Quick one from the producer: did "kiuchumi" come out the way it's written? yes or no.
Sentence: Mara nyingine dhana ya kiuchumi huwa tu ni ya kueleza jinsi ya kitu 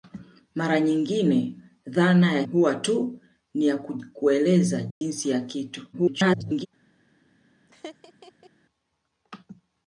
no